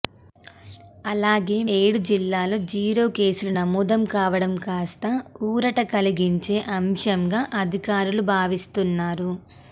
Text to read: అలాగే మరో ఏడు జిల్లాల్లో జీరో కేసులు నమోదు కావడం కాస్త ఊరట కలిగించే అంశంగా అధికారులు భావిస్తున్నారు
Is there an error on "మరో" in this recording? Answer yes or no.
yes